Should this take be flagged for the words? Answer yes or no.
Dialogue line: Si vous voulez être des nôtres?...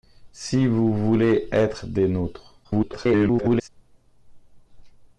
yes